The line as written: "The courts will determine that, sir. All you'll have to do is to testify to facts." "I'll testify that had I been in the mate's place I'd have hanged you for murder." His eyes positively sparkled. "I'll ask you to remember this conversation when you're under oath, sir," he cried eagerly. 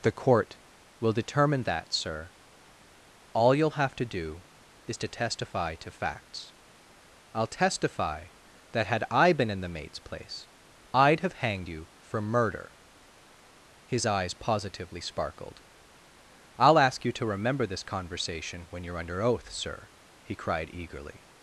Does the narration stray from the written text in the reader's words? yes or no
yes